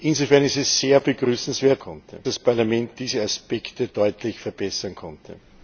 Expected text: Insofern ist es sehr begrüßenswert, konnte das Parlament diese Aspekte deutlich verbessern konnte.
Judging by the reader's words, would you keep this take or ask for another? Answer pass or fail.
pass